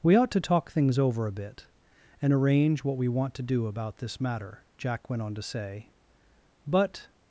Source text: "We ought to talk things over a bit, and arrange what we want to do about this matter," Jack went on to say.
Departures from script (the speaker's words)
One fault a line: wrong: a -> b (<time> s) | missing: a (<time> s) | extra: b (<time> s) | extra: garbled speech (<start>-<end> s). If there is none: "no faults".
extra: But (6.7 s)